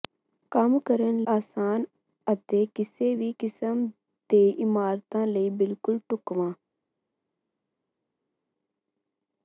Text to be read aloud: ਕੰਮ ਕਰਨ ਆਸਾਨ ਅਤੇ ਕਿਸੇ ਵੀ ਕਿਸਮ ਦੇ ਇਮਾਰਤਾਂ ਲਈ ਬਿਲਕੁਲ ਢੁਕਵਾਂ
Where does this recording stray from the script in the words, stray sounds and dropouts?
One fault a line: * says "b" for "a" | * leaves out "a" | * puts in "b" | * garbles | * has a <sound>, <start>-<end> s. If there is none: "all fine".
all fine